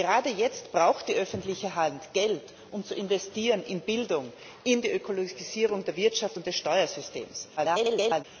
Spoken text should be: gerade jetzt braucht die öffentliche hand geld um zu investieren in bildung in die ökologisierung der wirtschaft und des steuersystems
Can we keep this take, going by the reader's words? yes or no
no